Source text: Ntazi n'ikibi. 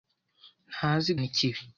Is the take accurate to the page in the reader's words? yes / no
yes